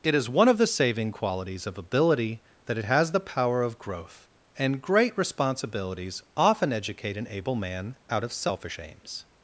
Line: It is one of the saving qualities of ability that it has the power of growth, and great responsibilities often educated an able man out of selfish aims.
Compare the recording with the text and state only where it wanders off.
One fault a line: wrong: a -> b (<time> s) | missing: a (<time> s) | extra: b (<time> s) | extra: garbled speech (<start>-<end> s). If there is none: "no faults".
wrong: educated -> educate (6.7 s)